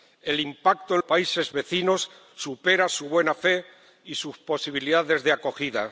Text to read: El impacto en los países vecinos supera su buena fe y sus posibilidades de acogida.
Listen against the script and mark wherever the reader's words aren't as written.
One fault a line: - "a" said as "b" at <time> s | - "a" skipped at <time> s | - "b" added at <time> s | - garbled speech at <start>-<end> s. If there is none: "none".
- "los" skipped at 1.0 s